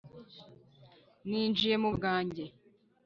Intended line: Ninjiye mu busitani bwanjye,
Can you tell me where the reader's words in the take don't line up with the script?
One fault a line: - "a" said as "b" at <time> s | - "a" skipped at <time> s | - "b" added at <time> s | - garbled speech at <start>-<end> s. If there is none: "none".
- "busitani" skipped at 1.9 s